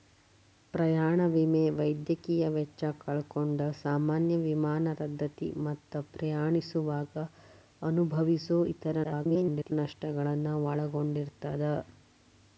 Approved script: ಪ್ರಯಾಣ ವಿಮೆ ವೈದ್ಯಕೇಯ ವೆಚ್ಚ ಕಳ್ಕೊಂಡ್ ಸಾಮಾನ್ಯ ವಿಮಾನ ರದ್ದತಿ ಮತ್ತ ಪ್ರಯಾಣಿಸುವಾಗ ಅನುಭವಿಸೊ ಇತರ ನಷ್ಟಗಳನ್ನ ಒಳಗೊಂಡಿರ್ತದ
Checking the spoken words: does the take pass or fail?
fail